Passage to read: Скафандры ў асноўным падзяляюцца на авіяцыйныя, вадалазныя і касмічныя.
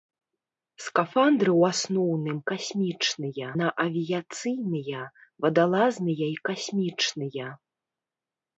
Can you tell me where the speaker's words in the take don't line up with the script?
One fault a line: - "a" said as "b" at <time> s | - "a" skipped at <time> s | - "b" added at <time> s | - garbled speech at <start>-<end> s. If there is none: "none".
- "падзяляюцца" said as "касмічныя" at 2.5 s